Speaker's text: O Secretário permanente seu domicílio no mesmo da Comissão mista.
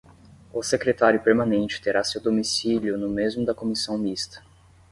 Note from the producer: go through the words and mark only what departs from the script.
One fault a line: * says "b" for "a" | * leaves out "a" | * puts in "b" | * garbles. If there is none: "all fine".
* puts in "terá"